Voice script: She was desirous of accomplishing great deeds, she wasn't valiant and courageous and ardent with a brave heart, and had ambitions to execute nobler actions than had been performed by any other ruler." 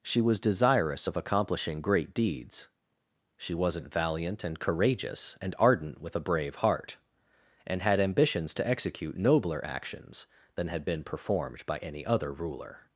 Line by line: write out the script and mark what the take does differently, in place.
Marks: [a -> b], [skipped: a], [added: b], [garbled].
She was desirous of accomplishing great deeds, she wasn't valiant and courageous and ardent with a brave heart, and had ambitions to execute nobler actions than had been performed by any other ruler."